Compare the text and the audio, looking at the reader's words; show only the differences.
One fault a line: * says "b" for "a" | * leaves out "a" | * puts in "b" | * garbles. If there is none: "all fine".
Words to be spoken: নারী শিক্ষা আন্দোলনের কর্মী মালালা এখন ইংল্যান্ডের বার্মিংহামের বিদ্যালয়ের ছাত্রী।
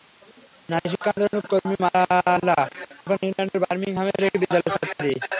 * puts in "একটি"